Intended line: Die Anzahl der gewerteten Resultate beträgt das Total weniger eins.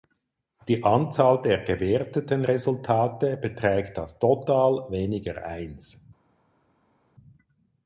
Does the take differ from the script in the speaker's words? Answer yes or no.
no